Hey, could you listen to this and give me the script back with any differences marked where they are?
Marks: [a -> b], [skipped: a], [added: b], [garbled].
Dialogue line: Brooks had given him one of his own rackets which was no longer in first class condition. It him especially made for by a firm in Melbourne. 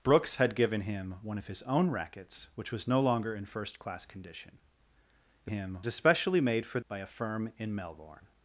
Brooks had given him one of his own rackets which was no longer in first class condition. It him especially made for by a firm in Melbourne.